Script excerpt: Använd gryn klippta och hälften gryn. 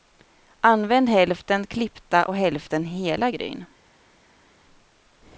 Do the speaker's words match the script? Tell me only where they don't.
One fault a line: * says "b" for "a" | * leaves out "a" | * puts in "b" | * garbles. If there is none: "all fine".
* says "hälften" for "gryn"
* puts in "hela"